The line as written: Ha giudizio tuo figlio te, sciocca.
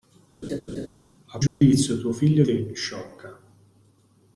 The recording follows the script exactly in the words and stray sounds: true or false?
false